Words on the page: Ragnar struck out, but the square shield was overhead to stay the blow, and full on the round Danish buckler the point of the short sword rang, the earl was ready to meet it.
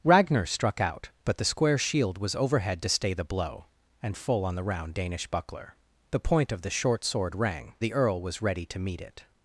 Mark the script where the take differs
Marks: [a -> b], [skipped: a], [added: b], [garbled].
Ragnar struck out, but the square shield was overhead to stay the blow, and full on the round Danish buckler the point of the short sword rang, the earl was ready to meet it.